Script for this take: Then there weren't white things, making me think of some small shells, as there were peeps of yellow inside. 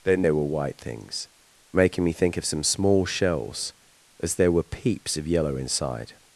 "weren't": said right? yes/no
no